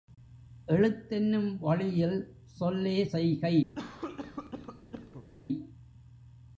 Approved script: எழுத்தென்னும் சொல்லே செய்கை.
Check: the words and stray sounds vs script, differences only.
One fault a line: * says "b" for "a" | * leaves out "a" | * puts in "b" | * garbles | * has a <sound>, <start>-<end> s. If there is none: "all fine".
* puts in "வழியில்"
* has a cough, 3.7-5.3 s